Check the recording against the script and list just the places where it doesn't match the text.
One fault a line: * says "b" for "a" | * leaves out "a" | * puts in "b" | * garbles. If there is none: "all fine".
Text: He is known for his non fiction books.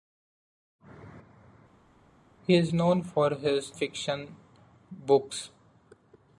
* leaves out "non"